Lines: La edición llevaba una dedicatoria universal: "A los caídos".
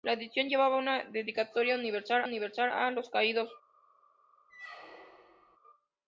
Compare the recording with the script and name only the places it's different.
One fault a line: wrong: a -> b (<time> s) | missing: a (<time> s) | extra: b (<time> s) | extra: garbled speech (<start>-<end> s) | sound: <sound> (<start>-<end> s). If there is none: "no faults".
extra: universal (2.2 s)
sound: squeak (4.5-5.6 s)